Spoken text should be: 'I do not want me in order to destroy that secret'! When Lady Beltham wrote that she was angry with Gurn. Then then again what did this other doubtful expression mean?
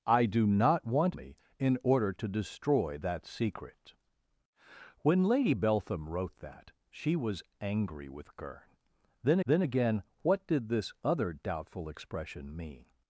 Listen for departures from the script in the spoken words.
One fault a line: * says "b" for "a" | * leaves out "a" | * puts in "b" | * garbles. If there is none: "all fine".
all fine